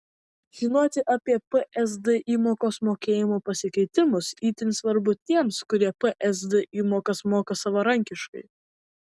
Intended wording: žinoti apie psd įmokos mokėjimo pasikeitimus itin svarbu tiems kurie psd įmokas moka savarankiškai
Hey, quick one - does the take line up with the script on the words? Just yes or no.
yes